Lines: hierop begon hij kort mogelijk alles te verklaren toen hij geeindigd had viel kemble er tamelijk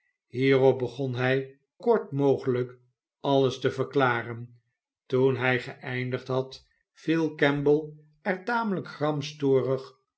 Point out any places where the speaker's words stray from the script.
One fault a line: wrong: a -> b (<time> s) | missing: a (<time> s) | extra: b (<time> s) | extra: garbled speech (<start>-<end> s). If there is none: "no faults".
no faults